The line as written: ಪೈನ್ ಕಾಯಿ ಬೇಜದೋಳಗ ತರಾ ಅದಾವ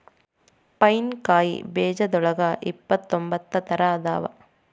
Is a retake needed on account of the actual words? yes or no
yes